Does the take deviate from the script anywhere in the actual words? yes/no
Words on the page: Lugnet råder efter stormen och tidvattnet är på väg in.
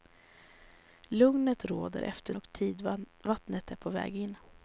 yes